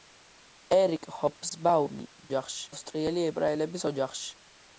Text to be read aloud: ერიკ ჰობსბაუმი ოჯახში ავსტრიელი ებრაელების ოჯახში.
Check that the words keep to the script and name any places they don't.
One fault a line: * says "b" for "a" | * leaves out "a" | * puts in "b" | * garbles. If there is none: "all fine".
all fine